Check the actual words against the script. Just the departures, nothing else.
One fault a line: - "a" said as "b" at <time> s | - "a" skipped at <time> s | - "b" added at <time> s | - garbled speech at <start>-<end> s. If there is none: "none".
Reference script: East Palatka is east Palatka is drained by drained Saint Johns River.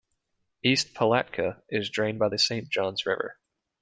- "east Palatka is" skipped at 1.9 s
- "drained" said as "the" at 2.3 s